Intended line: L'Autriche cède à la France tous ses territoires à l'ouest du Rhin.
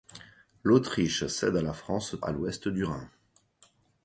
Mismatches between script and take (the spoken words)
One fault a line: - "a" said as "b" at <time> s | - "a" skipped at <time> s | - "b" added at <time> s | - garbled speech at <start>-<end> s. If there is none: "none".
- "tous ses territoires" skipped at 2.1 s